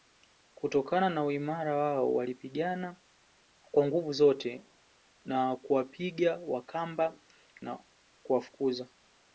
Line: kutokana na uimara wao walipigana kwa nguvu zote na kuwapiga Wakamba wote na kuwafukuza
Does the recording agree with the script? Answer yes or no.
no